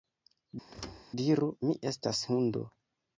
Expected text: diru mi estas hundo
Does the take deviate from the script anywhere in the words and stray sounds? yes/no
yes